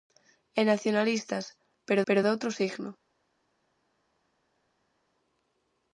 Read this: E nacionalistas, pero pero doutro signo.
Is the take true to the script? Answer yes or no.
yes